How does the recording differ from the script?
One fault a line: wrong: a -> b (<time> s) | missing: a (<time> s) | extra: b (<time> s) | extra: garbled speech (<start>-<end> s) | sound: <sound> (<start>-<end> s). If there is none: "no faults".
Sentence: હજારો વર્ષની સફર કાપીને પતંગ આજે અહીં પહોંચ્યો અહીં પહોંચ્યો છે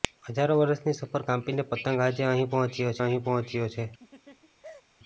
sound: laugh (4.0-4.8 s)